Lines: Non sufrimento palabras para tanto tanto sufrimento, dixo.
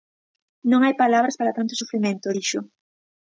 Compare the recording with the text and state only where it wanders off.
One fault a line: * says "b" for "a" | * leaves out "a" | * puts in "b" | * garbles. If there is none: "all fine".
* says "hai" for "sufrimento"
* leaves out "tanto"